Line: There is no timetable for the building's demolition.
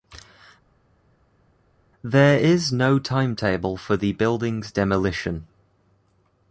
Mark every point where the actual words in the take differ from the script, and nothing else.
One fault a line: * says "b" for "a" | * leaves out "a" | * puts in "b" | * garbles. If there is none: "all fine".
all fine